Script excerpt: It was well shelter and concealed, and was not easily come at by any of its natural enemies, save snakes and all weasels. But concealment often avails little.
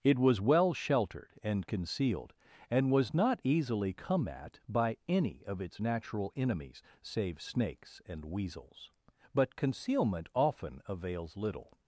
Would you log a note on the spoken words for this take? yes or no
yes